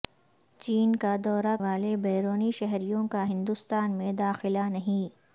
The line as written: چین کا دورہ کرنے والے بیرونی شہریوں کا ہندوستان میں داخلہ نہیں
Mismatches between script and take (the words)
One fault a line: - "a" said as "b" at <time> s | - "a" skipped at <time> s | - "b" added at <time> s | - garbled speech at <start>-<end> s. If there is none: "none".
- "کرنے" skipped at 1.6 s